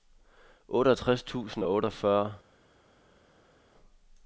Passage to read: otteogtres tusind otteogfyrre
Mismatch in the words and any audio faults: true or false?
true